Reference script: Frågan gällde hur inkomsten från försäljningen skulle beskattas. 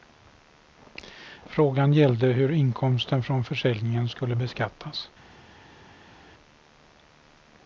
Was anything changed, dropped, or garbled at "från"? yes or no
no